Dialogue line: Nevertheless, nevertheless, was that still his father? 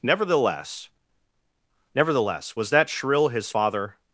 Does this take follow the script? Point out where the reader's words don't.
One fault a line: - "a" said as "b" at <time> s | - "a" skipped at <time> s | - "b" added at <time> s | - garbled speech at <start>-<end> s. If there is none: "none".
- "still" said as "shrill" at 2.9 s